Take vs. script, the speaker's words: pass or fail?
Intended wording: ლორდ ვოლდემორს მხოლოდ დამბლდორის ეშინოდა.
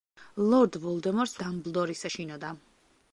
fail